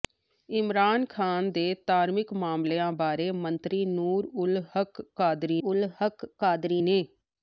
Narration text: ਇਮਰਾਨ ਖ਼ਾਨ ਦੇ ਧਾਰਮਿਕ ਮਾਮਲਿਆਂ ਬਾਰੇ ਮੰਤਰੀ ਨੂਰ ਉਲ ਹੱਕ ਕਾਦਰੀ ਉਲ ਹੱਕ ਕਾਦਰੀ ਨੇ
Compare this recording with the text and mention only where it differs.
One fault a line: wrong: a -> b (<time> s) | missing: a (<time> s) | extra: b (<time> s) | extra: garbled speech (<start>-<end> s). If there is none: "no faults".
no faults